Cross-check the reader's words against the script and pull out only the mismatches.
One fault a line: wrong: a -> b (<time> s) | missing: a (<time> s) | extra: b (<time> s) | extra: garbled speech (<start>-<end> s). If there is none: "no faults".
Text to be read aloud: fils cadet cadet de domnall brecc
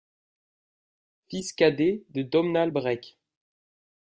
missing: cadet (2.0 s)